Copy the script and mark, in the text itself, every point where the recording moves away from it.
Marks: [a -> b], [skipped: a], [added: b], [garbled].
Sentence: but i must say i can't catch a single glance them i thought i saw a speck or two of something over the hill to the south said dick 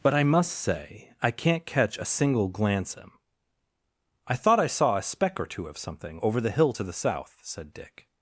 but i must say i can't catch a single glance them i thought i saw a speck or two of something over the hill to the south said dick